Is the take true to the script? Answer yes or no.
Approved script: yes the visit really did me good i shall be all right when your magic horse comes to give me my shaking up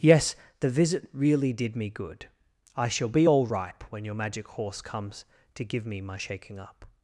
no